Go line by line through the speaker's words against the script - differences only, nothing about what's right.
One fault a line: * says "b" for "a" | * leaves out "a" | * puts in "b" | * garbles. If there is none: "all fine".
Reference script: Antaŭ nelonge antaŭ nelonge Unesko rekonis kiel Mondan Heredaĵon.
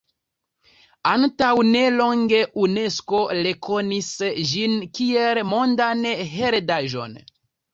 * leaves out "antaŭ nelonge"
* puts in "ĝin"